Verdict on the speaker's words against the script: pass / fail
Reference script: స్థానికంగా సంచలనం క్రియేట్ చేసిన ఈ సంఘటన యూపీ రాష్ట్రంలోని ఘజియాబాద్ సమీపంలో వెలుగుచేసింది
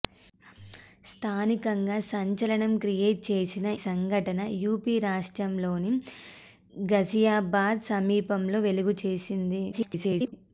fail